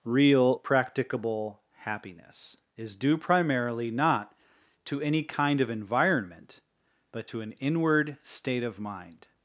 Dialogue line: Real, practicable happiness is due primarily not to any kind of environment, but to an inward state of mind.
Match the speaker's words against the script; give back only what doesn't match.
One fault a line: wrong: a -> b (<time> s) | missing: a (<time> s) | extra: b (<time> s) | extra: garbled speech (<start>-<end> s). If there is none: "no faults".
no faults